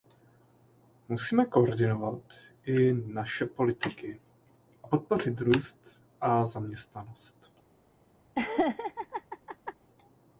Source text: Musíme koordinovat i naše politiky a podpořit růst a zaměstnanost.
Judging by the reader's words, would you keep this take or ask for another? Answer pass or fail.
fail